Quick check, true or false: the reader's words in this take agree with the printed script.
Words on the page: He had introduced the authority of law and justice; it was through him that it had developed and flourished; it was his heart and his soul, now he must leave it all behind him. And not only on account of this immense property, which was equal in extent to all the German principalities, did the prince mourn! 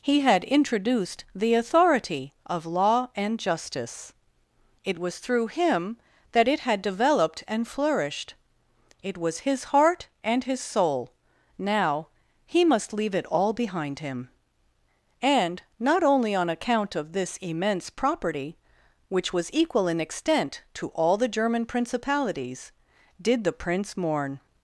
true